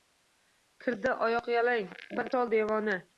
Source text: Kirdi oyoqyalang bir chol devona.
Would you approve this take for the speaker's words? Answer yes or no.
yes